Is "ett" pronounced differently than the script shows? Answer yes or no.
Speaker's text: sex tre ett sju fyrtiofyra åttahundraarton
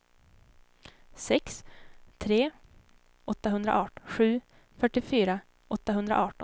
yes